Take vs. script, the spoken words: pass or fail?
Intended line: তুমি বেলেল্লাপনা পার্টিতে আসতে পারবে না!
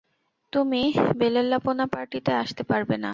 pass